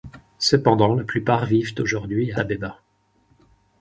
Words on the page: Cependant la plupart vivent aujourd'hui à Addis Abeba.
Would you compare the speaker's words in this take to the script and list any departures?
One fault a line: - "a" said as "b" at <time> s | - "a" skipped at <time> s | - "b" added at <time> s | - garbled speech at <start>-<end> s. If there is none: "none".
- "Addis" skipped at 2.4 s